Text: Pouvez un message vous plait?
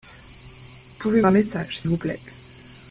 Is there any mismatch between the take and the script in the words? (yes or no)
no